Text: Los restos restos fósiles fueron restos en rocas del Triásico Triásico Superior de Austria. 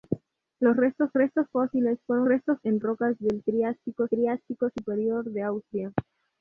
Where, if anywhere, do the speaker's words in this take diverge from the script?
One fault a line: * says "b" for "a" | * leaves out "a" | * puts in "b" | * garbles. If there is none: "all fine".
all fine